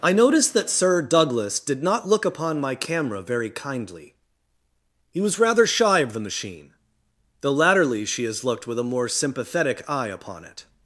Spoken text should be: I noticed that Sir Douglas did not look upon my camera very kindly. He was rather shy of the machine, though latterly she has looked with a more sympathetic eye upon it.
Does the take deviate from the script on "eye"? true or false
false